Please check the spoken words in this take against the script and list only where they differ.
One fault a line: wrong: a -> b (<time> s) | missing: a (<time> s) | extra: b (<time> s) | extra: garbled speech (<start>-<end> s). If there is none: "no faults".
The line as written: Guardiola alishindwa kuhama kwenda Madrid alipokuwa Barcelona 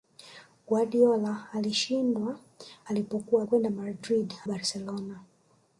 wrong: kuhama -> alipokuwa (2.9 s)
missing: alipokuwa (4.3 s)